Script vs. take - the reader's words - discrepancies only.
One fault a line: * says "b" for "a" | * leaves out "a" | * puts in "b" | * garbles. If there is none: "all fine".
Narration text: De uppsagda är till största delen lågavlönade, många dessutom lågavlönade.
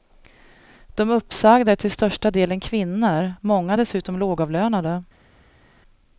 * says "kvinnor" for "lågavlönade"